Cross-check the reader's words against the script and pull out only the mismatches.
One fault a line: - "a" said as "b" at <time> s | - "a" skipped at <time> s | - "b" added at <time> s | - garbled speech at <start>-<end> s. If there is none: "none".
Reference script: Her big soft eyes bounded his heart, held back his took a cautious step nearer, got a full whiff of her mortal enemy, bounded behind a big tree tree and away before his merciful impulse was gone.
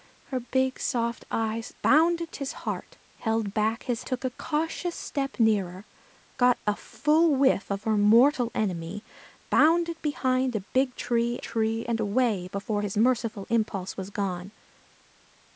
none